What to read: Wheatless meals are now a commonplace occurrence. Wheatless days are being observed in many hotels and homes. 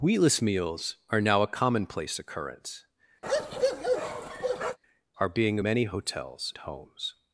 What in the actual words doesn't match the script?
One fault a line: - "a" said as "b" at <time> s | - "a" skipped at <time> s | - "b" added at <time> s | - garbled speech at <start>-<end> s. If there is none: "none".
- "Wheatless days" skipped at 2.9 s
- "observed in" skipped at 5.6 s
- "and" skipped at 6.5 s